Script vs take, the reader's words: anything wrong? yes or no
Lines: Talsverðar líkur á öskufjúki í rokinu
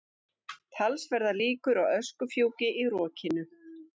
no